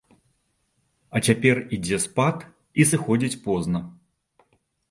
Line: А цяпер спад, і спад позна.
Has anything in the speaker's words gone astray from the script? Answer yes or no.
yes